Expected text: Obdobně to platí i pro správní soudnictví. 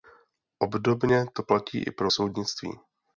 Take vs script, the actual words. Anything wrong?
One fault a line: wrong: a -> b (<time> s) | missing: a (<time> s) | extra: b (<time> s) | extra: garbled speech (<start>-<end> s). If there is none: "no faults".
missing: správní (2.1 s)